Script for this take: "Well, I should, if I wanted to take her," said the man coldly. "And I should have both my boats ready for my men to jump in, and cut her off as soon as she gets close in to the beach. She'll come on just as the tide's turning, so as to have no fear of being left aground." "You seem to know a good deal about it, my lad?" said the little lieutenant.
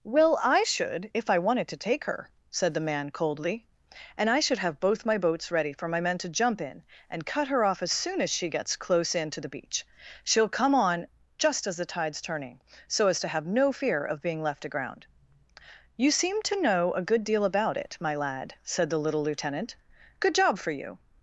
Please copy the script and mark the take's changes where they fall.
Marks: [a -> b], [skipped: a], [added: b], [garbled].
"Well, I should, if I wanted to take her," said the man coldly. "And I should have both my boats ready for my men to jump in, and cut her off as soon as she gets close in to the beach. She'll come on just as the tide's turning, so as to have no fear of being left aground." "You seem to know a good deal about it, my lad?" said the little lieutenant. [added: Good job for you]